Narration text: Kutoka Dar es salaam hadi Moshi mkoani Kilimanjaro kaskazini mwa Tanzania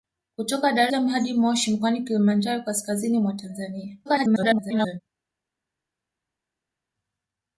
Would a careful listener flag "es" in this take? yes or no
yes